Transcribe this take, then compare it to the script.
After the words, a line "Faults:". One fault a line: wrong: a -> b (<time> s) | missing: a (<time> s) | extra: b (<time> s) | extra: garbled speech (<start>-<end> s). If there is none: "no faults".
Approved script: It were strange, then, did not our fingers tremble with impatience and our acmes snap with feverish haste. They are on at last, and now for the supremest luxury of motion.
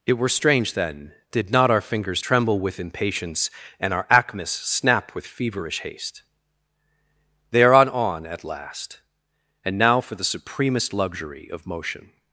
It were strange, then, did not our fingers tremble with impatience and our acmes snap with feverish haste. They are on on at last, and now for the supremest luxury of motion.
Faults:
extra: on (7.9 s)